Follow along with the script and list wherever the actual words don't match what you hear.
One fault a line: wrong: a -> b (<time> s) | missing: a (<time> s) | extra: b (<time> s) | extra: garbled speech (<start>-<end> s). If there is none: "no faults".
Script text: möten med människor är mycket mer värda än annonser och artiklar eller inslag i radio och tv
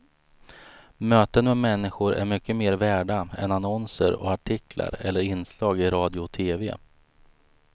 no faults